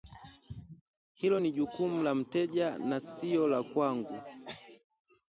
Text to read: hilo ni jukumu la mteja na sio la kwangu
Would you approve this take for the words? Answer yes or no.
yes